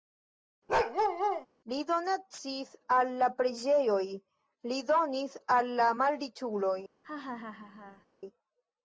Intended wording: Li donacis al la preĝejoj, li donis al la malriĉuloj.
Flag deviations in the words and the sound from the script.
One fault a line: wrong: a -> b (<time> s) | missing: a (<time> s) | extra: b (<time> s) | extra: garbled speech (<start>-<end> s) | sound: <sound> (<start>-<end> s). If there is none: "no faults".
sound: bark (0.7-1.5 s)
sound: laugh (7.0-8.1 s)